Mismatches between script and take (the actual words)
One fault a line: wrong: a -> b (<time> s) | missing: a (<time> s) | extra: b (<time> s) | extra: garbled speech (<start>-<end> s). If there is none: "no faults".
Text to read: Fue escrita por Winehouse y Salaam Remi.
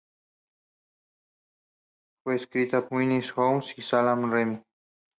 missing: por (2.9 s)